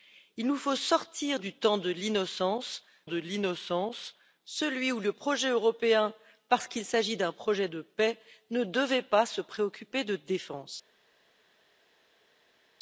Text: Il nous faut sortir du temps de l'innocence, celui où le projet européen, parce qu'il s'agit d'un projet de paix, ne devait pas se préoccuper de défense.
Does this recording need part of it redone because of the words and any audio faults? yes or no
yes